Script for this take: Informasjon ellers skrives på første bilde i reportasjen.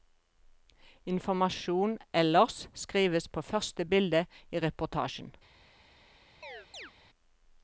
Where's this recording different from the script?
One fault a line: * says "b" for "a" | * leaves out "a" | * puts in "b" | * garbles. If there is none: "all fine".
all fine